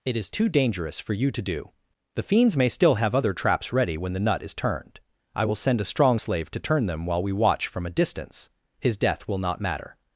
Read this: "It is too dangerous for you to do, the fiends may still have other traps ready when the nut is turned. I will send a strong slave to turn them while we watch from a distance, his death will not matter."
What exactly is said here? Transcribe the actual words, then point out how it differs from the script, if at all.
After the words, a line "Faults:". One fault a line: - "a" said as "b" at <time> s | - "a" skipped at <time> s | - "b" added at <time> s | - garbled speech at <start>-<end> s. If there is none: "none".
"It is too dangerous for you to do, the fiends may still have other traps ready when the nut is turned. I will send a strong slave to turn them while we watch from a distance, his death will not matter."
Faults:
none